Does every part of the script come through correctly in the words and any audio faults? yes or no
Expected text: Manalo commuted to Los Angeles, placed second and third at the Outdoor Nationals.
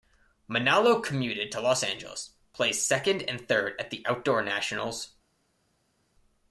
yes